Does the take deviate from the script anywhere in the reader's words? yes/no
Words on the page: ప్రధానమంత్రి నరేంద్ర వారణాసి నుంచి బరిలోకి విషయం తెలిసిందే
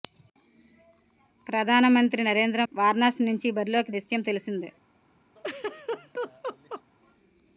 no